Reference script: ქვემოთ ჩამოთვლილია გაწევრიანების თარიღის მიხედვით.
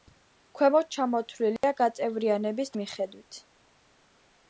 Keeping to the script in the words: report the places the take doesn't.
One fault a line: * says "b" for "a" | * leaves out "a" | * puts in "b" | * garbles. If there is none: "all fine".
* leaves out "თარიღის"